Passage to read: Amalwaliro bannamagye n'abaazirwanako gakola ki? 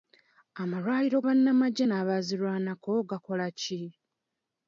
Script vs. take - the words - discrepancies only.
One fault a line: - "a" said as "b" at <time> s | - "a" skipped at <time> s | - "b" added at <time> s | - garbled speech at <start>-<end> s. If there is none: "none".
none